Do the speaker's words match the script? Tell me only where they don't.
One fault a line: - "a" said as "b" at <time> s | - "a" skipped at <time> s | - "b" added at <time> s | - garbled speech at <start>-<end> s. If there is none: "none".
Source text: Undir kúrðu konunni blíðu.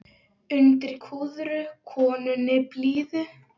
none